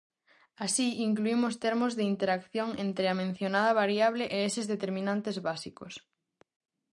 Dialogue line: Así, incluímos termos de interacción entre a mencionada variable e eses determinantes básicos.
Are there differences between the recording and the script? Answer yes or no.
no